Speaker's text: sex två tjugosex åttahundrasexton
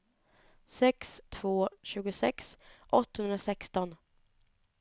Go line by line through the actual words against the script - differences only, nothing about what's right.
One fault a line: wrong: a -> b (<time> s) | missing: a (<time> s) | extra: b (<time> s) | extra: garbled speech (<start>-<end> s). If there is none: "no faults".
no faults